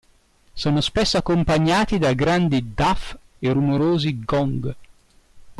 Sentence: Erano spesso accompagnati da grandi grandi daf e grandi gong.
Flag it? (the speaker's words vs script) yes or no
yes